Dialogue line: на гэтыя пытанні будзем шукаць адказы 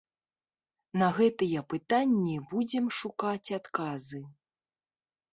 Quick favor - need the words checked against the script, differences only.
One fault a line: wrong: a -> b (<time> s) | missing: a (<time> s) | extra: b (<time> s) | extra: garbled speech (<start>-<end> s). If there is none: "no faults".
no faults